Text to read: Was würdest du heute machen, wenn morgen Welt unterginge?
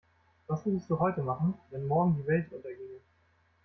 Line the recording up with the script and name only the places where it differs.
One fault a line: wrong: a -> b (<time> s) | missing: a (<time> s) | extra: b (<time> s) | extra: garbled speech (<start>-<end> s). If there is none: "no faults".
extra: die (2.1 s)